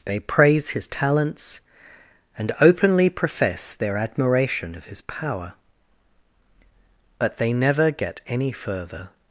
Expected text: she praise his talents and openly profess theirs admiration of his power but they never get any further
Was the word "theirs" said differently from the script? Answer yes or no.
yes